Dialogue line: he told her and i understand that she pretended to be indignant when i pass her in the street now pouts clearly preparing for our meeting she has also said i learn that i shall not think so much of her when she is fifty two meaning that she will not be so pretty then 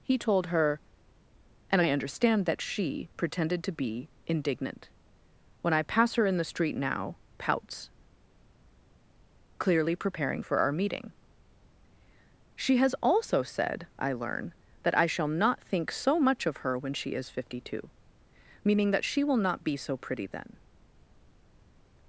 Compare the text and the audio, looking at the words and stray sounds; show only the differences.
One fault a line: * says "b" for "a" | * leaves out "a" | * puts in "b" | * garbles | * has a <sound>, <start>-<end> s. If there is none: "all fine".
all fine